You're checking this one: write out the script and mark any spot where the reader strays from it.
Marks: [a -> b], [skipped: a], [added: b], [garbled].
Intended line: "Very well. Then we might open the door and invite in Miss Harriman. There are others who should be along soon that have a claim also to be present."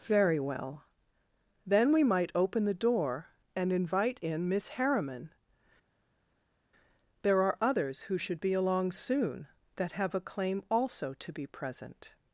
"Very well. Then we might open the door and invite in Miss Harriman. There are others who should be along soon that have a claim also to be present."